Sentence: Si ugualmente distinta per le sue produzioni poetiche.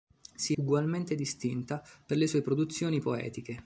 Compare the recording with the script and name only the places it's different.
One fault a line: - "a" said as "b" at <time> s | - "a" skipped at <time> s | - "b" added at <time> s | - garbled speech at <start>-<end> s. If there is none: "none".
none